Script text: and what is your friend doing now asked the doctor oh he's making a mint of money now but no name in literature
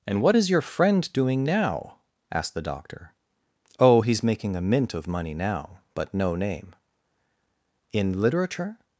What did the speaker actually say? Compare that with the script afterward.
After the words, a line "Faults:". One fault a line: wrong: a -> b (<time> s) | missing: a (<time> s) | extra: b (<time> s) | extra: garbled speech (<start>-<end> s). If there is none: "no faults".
and what is your friend doing now asked the doctor oh he's making a mint of money now but no name in literature
Faults:
no faults